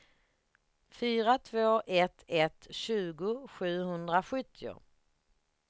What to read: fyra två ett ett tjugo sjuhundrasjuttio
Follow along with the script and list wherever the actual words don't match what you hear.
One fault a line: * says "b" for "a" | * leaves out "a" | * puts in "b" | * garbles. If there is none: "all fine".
all fine